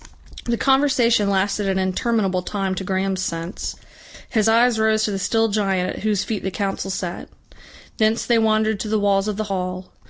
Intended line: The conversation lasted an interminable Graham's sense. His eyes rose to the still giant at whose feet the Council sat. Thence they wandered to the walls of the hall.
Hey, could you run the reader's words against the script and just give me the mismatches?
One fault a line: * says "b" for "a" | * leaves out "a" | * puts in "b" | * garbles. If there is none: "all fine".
* puts in "time to"